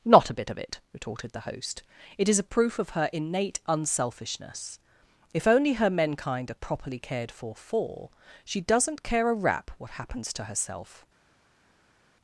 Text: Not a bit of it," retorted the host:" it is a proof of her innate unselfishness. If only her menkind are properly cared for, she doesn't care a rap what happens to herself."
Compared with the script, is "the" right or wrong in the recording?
right